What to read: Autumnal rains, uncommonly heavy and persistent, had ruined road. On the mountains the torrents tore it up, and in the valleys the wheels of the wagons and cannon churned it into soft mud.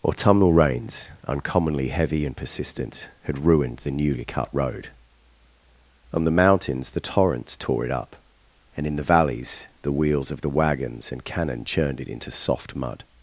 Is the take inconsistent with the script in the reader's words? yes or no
yes